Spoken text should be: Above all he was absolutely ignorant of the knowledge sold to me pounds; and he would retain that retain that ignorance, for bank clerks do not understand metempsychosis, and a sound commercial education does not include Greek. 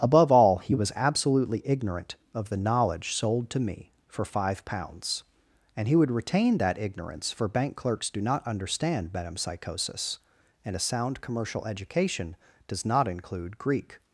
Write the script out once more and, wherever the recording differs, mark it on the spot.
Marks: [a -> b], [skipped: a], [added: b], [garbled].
Above all he was absolutely ignorant of the knowledge sold to me [added: for five] pounds; and he would retain that [skipped: retain that] ignorance, for bank clerks do not understand metempsychosis, and a sound commercial education does not include Greek.